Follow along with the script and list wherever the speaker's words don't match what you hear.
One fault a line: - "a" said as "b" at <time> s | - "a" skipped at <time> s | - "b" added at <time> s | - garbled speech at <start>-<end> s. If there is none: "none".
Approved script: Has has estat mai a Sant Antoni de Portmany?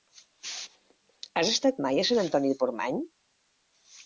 - "has" skipped at 1.5 s